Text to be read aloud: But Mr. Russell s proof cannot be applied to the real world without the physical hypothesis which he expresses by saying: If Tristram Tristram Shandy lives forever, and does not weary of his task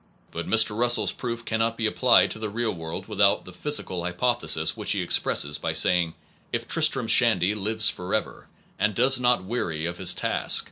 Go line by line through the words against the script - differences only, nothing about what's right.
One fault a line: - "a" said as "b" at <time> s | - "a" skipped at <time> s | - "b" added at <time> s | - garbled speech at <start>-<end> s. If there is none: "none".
- "Tristram" skipped at 7.0 s